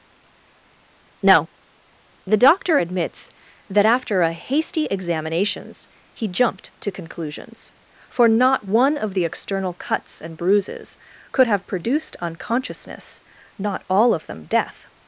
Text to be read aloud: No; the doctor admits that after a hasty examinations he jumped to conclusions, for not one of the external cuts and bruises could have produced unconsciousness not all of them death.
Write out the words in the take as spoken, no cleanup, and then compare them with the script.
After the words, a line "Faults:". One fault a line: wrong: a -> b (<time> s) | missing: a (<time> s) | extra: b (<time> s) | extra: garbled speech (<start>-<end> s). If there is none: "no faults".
No; the doctor admits that after a hasty examinations he jumped to conclusions, for not one of the external cuts and bruises could have produced unconsciousness not all of them death.
Faults:
no faults